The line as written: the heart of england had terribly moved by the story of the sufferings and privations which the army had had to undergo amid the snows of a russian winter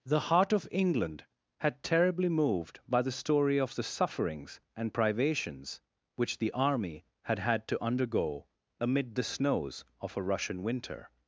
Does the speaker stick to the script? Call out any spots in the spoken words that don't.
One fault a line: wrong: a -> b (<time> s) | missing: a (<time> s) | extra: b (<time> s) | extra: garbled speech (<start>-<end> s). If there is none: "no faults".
no faults